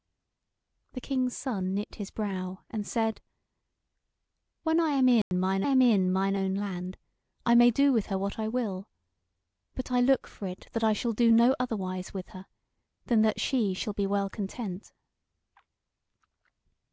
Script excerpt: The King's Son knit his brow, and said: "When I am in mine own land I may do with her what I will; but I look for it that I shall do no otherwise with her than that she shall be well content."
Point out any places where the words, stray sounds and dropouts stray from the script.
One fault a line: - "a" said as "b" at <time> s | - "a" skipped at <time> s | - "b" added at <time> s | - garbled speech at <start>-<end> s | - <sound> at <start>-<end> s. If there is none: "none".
- dropout at 5.2-5.3 s
- "am in mine" added at 5.6 s